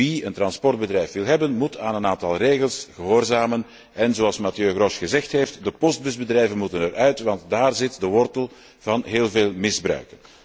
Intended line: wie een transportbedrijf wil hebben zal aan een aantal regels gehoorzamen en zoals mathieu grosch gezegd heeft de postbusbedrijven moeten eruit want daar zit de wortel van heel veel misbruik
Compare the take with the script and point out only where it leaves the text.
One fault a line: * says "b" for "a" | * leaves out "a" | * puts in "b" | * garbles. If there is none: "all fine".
* says "moet" for "zal"